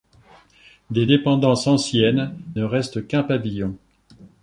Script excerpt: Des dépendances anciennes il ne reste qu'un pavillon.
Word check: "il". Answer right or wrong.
wrong